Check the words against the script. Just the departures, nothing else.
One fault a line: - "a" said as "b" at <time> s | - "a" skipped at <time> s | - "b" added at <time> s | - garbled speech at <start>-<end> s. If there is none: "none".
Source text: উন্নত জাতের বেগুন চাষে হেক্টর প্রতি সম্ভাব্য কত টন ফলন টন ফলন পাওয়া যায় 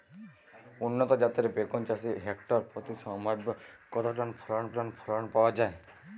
none